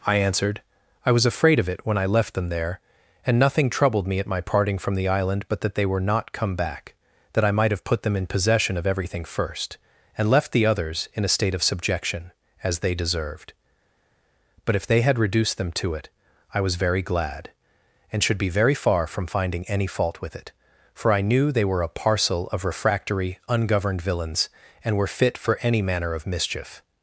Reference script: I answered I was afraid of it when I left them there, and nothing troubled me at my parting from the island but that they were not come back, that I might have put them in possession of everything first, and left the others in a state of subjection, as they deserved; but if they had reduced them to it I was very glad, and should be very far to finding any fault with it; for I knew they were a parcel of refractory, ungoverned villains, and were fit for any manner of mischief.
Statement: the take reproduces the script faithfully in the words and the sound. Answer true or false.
false